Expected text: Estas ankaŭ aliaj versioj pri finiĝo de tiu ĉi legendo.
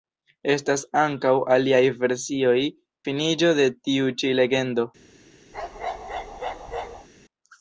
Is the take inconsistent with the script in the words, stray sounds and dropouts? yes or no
yes